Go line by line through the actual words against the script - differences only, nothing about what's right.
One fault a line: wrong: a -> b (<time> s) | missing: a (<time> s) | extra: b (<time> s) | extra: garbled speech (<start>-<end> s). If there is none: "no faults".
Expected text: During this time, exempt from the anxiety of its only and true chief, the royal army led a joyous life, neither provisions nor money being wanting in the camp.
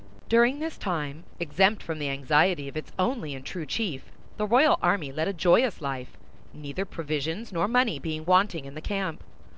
no faults